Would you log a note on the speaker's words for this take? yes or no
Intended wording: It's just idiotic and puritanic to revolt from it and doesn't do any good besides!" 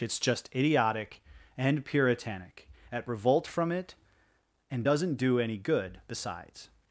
yes